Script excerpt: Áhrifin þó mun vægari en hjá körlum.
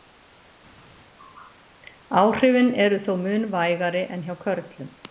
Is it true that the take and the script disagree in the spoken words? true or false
true